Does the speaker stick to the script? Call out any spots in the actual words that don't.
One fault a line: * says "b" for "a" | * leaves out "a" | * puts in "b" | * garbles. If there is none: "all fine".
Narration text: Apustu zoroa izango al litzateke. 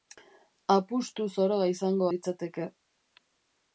* leaves out "al"